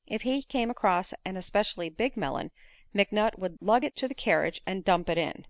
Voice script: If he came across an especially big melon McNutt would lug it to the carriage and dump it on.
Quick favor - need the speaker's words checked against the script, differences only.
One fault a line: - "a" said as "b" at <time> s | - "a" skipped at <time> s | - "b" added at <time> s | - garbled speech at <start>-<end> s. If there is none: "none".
- "on" said as "in" at 5.2 s